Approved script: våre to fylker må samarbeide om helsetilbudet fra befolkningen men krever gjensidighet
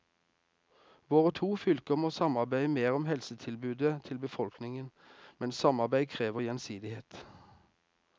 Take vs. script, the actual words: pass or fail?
fail